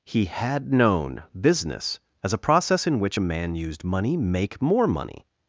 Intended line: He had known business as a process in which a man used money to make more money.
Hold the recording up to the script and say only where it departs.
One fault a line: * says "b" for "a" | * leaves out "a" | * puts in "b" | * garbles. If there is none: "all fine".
* leaves out "to"